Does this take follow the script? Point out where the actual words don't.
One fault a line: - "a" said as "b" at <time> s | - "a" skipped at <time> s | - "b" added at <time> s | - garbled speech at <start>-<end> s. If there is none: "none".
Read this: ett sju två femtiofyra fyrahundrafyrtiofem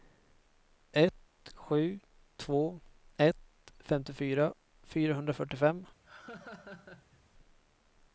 - "ett" added at 3.2 s